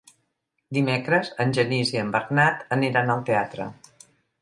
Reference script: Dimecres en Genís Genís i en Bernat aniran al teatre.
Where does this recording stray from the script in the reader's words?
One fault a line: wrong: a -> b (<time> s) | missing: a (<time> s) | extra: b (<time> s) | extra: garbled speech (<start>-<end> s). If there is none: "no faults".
missing: Genís (1.9 s)